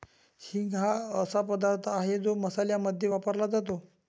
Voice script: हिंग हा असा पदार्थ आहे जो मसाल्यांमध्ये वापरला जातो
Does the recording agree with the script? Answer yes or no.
yes